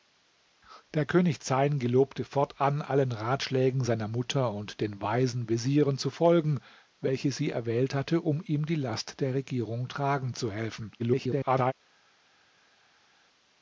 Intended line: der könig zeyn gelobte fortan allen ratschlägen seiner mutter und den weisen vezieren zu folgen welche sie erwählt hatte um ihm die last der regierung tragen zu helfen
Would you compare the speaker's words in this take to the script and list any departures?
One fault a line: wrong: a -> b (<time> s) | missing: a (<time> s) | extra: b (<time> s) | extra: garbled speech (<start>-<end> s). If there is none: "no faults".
extra: garbled speech (11.0-11.7 s)